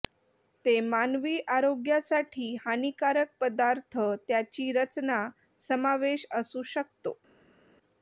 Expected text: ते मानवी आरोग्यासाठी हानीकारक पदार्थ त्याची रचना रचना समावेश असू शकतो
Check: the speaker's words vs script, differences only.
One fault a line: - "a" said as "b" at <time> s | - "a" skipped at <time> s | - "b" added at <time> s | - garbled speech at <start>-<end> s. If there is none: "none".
- "रचना" skipped at 5.2 s